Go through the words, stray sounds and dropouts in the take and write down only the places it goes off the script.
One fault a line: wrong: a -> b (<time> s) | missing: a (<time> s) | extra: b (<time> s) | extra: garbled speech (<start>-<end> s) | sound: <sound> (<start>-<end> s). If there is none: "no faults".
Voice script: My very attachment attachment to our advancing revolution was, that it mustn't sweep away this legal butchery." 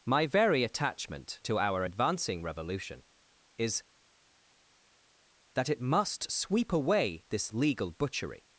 missing: attachment (1.4 s)
wrong: was -> is (3.6 s)
wrong: mustn't -> must (5.8 s)